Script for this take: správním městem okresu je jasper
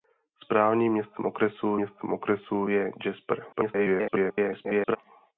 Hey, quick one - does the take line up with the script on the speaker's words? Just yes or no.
no